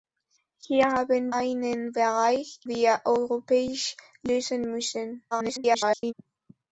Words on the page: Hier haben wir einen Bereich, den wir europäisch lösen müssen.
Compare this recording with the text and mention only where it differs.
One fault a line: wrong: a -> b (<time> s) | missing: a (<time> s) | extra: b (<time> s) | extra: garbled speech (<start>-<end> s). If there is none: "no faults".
missing: wir (1.4 s)
missing: den (2.6 s)
extra: garbled speech (5.3-6.1 s)